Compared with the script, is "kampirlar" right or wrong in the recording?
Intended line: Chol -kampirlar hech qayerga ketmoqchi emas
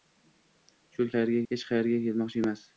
wrong